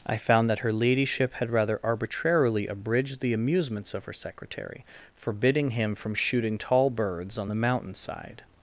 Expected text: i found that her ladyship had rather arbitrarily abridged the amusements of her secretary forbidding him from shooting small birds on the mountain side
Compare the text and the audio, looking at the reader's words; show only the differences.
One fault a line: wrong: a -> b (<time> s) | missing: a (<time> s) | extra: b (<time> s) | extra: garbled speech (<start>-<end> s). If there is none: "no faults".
wrong: small -> tall (6.6 s)